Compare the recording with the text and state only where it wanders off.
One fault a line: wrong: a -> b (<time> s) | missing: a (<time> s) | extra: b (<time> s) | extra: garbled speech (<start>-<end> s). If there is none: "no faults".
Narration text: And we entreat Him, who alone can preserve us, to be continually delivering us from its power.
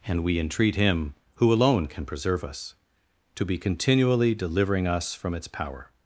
no faults